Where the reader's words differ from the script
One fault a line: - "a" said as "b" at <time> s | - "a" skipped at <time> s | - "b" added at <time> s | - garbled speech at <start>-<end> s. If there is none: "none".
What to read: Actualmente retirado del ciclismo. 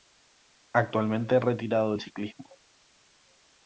none